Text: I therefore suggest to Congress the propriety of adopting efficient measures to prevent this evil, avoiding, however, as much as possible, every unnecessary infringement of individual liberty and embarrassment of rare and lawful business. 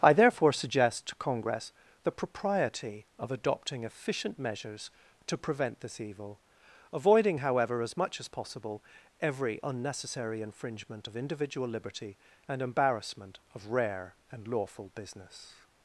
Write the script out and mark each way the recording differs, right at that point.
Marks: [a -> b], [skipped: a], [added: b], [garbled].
I therefore suggest to Congress the propriety of adopting efficient measures to prevent this evil, avoiding, however, as much as possible, every unnecessary infringement of individual liberty and embarrassment of rare and lawful business.